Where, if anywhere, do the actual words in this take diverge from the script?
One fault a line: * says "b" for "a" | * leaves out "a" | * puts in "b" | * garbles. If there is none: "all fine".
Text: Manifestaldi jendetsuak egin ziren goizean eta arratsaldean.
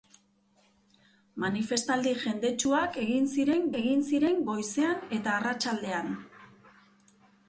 * puts in "egin ziren"